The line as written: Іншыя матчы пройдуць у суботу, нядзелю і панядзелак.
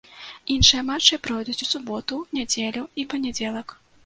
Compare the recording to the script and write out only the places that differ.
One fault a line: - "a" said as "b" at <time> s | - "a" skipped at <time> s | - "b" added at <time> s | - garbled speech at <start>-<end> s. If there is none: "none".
none